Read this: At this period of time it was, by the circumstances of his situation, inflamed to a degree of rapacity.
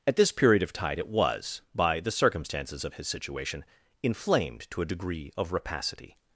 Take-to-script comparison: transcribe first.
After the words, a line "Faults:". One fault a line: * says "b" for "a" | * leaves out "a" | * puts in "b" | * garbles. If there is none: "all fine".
At this period of tide it was, by the circumstances of his situation, inflamed to a degree of rapacity.
Faults:
* says "tide" for "time"